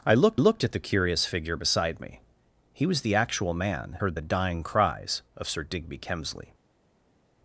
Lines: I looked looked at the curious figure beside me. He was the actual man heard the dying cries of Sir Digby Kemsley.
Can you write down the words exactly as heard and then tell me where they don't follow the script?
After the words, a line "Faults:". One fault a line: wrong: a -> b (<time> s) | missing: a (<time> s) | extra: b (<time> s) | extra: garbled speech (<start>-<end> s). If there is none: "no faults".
I looked looked at the curious figure beside me. He was the actual man heard the dying cries of Sir Digby Kemsley.
Faults:
no faults